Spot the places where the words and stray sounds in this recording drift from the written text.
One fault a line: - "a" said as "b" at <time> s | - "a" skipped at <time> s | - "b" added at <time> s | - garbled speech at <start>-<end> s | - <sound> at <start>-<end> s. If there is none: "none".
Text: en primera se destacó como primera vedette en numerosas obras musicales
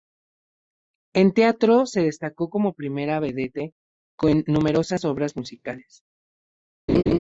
- "primera" said as "teatro" at 1.3 s
- laugh at 6.9-7.2 s